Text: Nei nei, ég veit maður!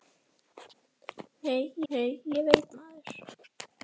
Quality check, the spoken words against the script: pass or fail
pass